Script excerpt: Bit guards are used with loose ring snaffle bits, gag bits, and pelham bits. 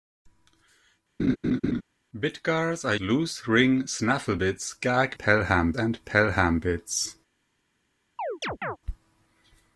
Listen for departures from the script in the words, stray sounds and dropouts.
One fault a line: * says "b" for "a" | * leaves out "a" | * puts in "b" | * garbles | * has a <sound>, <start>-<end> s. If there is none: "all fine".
* has a laugh, 1.2-1.8 s
* leaves out "used with"
* says "pelham" for "bits"
* has a chirp, 8.2-8.8 s